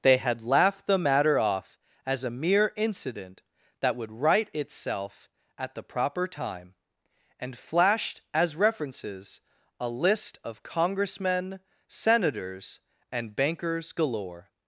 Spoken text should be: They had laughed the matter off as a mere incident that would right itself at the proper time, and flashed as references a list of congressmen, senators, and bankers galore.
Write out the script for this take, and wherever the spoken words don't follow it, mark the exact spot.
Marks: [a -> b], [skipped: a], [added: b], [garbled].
They had laughed the matter off as a mere incident that would right itself at the proper time, and flashed as references a list of congressmen, senators, and bankers galore.